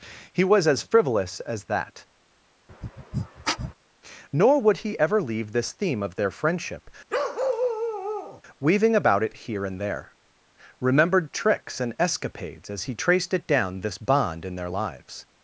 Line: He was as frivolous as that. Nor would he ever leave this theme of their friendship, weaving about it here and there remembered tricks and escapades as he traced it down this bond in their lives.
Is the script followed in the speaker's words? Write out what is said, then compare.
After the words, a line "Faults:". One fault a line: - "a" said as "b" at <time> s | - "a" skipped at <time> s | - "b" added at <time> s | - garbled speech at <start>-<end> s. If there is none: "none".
He was as frivolous as that. Nor would he ever leave this theme of their friendship, weaving about it here and there remembered tricks and escapades as he traced it down this bond in their lives.
Faults:
none